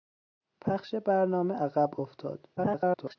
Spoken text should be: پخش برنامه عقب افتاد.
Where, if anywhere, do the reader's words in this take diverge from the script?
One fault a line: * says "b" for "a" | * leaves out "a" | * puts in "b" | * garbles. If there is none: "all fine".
* garbles